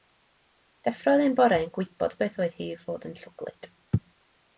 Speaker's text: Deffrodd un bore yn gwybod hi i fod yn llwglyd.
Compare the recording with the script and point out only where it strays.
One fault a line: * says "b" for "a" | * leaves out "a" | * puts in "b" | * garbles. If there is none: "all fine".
* puts in "beth oedd"